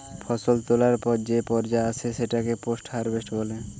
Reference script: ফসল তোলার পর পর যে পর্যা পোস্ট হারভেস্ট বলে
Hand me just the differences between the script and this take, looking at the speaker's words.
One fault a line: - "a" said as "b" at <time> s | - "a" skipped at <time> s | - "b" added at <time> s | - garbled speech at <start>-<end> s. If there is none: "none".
- "পর" skipped at 1.1 s
- "আসে সেটাকে" added at 1.9 s